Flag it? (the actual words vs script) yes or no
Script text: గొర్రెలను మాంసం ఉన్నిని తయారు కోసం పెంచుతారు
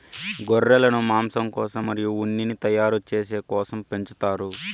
yes